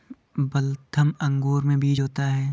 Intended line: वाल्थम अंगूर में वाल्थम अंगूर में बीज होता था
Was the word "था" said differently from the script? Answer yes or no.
yes